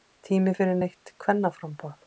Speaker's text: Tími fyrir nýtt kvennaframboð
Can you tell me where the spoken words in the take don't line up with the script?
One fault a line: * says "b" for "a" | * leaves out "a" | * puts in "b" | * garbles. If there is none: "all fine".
all fine